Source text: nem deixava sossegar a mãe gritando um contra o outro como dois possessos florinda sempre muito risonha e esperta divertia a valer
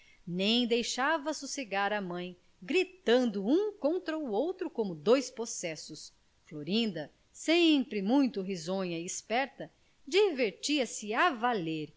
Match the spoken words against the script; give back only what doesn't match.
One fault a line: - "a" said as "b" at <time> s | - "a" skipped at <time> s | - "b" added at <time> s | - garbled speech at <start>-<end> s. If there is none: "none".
- "se" added at 10.9 s